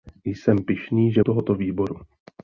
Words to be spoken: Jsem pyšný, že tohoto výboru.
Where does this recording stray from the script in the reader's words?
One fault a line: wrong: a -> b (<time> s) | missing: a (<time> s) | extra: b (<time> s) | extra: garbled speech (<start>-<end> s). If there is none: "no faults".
no faults